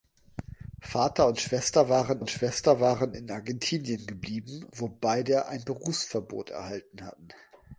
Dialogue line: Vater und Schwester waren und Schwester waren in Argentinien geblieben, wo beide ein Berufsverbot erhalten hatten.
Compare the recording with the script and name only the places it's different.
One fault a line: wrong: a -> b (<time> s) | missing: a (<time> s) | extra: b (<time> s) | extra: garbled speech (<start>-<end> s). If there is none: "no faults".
no faults